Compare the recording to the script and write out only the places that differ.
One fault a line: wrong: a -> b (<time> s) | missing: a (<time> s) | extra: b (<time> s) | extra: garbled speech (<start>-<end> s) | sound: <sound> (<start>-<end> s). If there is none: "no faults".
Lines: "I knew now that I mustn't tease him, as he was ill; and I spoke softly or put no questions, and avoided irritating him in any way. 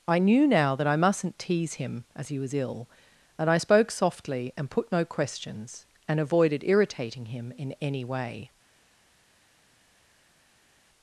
wrong: or -> and (4.5 s)